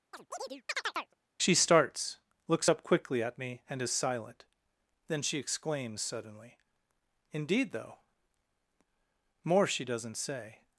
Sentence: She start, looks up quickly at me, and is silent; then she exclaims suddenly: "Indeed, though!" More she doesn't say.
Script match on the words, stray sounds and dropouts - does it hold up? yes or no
no